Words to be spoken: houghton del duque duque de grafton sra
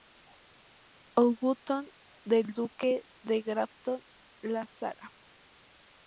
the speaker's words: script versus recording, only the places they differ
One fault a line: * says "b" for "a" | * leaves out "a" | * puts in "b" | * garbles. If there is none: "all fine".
* leaves out "duque"
* puts in "la"